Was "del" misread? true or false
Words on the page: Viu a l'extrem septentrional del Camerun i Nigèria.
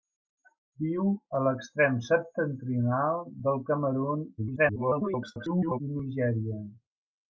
false